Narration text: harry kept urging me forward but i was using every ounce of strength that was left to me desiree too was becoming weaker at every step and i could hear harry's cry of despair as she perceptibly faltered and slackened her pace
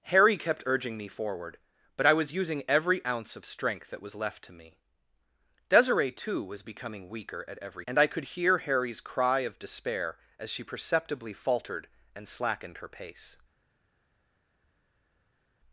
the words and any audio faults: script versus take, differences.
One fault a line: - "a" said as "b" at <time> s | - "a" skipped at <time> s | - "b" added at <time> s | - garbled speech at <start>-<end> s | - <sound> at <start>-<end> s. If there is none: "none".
- "step" skipped at 7.8 s